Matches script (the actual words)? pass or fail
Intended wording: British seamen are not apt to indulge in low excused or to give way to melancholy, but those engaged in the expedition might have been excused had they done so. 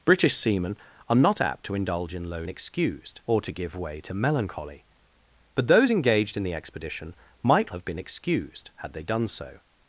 pass